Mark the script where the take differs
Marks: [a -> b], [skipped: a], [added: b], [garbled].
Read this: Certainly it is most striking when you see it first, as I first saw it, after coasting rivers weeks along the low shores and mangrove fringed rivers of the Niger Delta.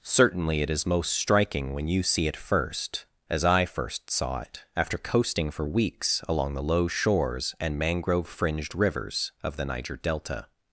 Certainly it is most striking when you see it first, as I first saw it, after coasting [rivers -> for] weeks along the low shores and mangrove fringed rivers of the Niger Delta.